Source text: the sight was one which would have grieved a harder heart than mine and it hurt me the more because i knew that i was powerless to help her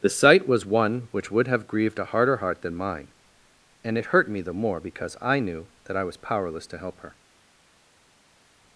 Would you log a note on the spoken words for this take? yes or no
no